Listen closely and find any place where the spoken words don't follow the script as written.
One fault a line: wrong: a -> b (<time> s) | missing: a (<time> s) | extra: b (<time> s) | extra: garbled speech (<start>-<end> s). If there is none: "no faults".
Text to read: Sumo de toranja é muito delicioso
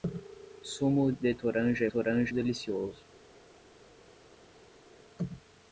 wrong: muito -> toranja (1.9 s)